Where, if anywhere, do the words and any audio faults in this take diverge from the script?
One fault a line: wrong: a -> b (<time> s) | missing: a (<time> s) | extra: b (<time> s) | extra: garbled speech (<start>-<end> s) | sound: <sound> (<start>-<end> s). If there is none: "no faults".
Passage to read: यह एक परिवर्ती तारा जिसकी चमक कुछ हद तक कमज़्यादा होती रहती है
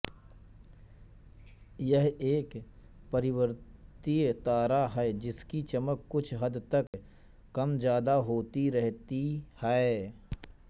extra: है (4.9 s)
sound: dropout (6.9-6.9 s)